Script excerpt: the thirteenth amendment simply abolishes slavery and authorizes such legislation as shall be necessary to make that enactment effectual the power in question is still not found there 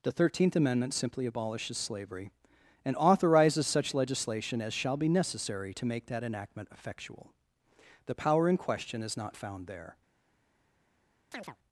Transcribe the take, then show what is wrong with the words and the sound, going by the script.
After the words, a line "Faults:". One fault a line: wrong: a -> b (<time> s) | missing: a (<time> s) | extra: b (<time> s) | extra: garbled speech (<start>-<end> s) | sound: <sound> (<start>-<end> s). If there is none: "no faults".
the thirteenth amendment simply abolishes slavery and authorizes such legislation as shall be necessary to make that enactment effectual the power in question is not found there
Faults:
missing: still (9.2 s)
sound: chirp (11.3-11.6 s)